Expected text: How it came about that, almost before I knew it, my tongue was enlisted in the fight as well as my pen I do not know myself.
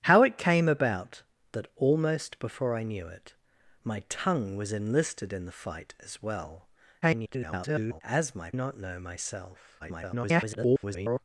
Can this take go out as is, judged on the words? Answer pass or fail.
fail